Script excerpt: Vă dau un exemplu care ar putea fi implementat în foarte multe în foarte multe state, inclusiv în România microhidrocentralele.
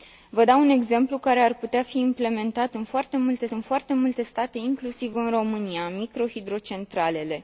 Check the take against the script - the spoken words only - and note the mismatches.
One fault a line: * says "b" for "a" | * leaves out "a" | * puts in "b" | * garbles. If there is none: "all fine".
all fine